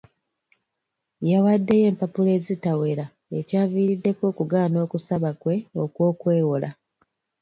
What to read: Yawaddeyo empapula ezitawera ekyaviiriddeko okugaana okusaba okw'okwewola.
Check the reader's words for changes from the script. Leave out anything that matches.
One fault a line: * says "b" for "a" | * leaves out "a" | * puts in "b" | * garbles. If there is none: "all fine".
* puts in "kwe"